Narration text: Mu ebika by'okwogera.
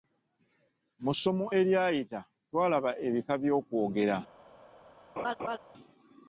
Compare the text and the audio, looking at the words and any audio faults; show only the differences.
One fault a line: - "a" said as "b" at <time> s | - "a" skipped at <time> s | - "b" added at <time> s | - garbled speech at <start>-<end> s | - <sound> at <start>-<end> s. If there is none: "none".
- "ssomo eryayita twalaba" added at 1.1 s
- laugh at 5.2-5.6 s